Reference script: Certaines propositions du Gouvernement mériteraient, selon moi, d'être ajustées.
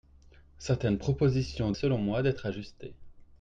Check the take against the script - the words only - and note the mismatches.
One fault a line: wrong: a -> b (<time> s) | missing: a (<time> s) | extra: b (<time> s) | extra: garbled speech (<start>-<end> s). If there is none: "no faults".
missing: du Gouvernement mériteraient (1.7 s)